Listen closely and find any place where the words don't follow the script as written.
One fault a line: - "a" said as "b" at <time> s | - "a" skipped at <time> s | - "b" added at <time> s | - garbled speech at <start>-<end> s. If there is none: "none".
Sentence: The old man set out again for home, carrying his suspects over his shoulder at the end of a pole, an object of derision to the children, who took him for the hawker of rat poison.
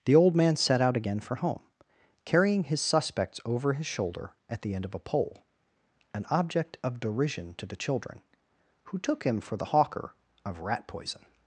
none